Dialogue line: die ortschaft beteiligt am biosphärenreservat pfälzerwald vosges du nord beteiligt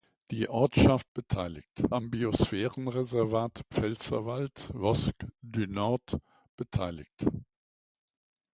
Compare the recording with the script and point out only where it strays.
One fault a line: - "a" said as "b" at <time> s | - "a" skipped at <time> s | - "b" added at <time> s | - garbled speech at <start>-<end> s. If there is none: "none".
none